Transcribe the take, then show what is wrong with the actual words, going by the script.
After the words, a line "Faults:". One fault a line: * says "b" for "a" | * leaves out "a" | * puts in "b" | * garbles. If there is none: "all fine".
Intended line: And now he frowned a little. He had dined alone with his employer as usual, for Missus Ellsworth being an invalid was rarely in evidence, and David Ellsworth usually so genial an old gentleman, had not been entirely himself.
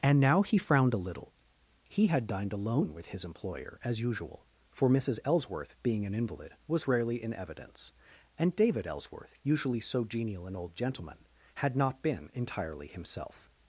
And now he frowned a little. He had dined alone with his employer as usual, for Missus Ellsworth being an invalid was rarely in evidence, and David Ellsworth usually so genial an old gentleman, had not been entirely himself.
Faults:
all fine